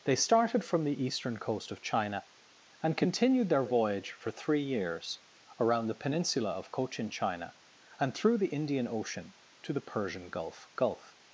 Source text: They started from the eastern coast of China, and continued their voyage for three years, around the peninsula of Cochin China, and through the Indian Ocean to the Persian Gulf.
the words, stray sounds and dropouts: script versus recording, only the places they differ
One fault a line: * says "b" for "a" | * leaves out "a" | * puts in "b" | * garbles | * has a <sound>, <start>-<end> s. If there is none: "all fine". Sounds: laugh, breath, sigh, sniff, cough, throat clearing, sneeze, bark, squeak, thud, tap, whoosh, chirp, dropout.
* puts in "Gulf"